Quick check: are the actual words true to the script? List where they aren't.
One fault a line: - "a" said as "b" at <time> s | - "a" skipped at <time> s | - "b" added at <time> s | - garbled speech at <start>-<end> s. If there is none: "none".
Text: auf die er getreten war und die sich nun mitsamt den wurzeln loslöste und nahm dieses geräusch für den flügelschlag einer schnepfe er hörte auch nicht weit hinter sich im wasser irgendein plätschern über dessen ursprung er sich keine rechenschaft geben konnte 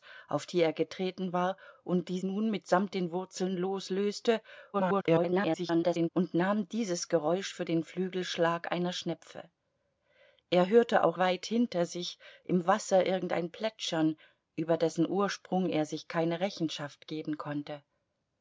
- "sich" skipped at 2.2 s
- garbled speech at 4.7-6.1 s
- "nicht" skipped at 11.2 s